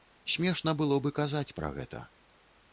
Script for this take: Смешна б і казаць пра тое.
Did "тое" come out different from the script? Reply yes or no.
yes